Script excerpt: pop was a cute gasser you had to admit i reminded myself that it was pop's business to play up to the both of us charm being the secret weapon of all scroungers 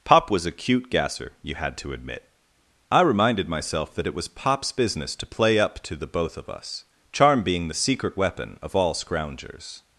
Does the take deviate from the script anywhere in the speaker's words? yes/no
no